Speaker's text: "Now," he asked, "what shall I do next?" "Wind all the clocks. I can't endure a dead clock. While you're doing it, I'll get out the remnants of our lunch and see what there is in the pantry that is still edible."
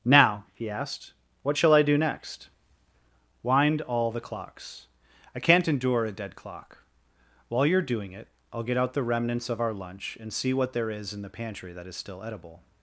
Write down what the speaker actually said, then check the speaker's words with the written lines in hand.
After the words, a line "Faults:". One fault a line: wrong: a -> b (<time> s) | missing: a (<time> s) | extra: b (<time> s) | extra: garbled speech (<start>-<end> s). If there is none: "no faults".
"Now," he asked, "what shall I do next?" "Wind all the clocks. I can't endure a dead clock. While you're doing it, I'll get out the remnants of our lunch and see what there is in the pantry that is still edible."
Faults:
no faults